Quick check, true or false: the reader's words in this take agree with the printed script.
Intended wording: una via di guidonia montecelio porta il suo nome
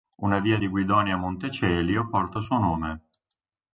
true